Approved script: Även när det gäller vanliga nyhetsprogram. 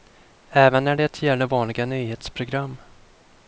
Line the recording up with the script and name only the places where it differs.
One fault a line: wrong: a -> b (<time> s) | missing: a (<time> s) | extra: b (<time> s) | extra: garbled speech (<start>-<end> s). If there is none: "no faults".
no faults